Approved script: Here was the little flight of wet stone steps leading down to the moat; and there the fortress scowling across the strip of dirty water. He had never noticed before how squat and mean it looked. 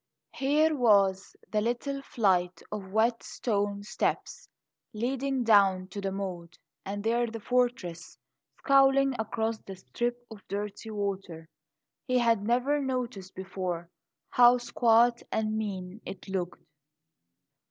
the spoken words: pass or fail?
pass